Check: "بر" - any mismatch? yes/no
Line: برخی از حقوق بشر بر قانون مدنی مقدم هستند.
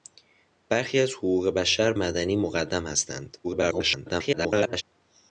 yes